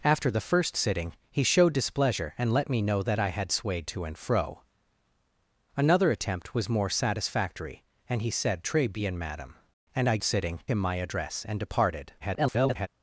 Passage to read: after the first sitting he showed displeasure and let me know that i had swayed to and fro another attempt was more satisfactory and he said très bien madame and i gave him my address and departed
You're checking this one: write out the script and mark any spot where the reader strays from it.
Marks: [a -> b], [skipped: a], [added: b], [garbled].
after the first sitting he showed displeasure and let me know that i had swayed to and fro another attempt was more satisfactory and he said très bien madame and i [gave -> sitting] him my address and departed [garbled]